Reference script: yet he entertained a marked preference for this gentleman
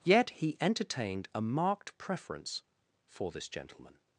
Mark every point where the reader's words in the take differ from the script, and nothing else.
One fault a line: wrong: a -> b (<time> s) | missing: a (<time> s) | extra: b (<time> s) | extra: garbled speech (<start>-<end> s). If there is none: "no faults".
no faults